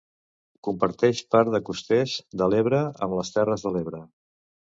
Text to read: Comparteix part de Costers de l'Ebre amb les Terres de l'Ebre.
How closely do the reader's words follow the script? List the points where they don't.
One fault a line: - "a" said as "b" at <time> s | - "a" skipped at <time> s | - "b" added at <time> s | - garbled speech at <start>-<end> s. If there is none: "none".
none